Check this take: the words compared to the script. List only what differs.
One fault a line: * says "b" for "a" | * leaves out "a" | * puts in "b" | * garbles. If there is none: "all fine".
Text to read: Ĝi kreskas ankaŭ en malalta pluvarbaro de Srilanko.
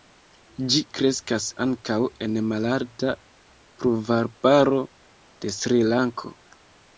all fine